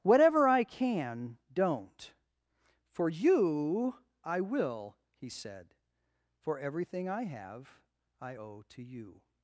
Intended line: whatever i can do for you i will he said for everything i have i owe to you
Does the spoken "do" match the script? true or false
false